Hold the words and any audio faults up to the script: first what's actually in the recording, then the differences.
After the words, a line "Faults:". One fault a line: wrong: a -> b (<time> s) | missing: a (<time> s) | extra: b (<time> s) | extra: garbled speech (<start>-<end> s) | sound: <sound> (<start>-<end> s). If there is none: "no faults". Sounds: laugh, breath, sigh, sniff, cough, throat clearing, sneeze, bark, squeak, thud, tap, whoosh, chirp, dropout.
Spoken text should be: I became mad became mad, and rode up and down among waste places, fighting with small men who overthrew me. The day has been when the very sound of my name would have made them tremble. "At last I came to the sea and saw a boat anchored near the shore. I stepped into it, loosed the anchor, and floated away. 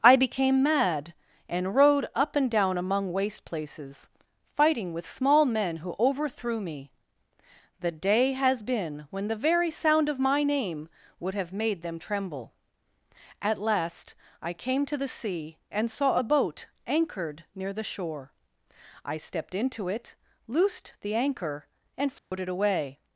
I became mad, and rode up and down among waste places, fighting with small men who overthrew me. The day has been when the very sound of my name would have made them tremble. "At last I came to the sea and saw a boat anchored near the shore. I stepped into it, loosed the anchor, and floated away.
Faults:
missing: became mad (1.1 s)
sound: dropout (22.2-22.3 s)